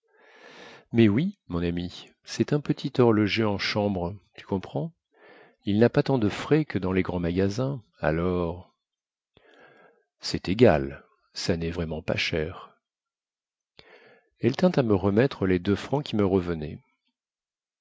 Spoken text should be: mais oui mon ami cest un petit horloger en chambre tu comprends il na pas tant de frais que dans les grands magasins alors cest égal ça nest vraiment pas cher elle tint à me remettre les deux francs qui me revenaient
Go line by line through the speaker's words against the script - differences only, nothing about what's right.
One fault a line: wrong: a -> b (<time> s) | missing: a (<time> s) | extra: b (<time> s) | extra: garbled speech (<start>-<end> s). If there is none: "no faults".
no faults